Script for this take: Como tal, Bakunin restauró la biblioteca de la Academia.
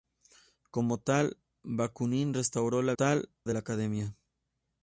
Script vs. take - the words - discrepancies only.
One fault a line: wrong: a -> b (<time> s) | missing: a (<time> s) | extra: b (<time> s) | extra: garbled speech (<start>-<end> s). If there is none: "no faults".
wrong: biblioteca -> tal (2.9 s)